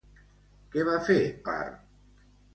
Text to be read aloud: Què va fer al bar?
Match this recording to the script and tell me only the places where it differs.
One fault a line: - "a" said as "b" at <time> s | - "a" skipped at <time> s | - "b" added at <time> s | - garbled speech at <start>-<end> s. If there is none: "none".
- "al" skipped at 1.2 s